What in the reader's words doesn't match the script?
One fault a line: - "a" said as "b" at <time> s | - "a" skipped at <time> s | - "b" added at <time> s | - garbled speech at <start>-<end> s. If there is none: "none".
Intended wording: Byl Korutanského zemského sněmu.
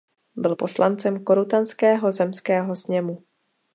- "poslancem" added at 0.5 s